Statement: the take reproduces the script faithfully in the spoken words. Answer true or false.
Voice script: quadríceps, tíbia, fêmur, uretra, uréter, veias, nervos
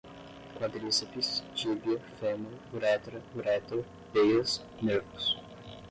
true